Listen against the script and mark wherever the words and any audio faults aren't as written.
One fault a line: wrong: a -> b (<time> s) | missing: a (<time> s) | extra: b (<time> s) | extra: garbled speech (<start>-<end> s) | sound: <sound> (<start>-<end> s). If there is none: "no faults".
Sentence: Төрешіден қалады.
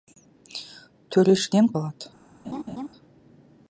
sound: laugh (2.4-2.9 s)